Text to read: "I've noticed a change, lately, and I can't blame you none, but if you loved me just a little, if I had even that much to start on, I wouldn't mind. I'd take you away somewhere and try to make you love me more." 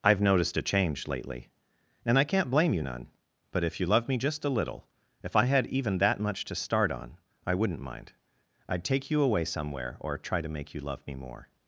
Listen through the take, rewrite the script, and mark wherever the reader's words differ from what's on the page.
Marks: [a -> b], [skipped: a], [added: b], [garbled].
"I've noticed a change, lately, and I can't blame you none, but if you [loved -> love] me just a little, if I had even that much to start on, I wouldn't mind. I'd take you away somewhere [and -> or] try to make you love me more."